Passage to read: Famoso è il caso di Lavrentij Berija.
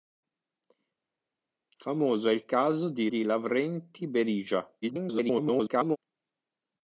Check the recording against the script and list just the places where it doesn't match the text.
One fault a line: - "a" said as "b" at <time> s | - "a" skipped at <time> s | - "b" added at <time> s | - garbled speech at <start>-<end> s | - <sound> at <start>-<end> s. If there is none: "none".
- "di" added at 3.0 s
- garbled speech at 4.8-6.0 s